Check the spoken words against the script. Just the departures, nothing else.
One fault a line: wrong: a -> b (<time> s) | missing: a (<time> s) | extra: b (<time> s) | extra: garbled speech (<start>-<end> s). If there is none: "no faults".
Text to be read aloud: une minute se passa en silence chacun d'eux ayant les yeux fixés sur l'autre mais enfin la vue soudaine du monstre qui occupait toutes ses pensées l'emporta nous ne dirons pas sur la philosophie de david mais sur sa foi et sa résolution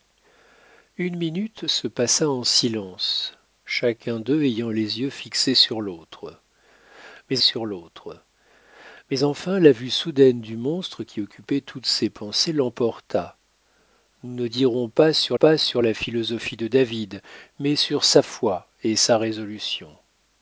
extra: sur l'autre mais (7.4 s)
extra: pas sur (15.3 s)